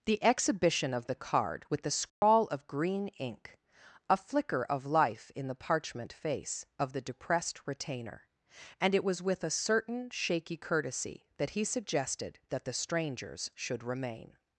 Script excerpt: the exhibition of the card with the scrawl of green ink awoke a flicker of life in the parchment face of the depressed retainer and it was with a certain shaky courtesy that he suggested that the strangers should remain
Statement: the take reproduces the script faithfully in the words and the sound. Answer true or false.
false